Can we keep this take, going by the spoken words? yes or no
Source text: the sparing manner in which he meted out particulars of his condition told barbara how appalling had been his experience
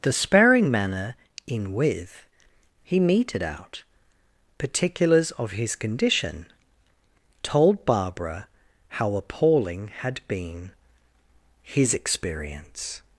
no